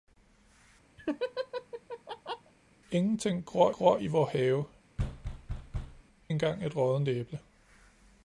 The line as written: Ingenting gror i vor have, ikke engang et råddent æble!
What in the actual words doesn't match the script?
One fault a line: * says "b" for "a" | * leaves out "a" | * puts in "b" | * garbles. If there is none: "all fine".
* puts in "gror"
* leaves out "ikke"